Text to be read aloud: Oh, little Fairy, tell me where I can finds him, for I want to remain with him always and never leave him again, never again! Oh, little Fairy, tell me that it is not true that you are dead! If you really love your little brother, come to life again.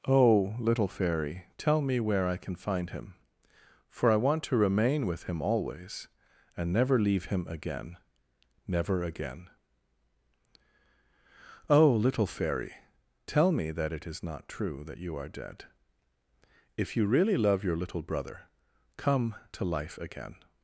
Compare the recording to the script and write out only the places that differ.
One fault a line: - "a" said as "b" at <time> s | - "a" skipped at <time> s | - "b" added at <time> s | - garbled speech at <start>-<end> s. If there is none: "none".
- "finds" said as "find" at 2.5 s